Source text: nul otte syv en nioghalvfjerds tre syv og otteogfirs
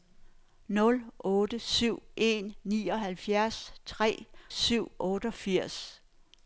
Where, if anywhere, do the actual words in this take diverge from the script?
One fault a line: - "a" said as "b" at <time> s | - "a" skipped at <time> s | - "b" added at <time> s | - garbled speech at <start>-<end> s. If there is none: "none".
none